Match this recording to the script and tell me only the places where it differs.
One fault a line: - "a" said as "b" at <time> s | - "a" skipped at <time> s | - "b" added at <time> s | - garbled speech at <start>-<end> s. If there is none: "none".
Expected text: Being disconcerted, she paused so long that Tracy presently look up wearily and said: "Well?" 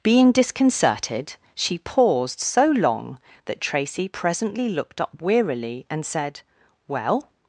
- "look" said as "looked" at 4.7 s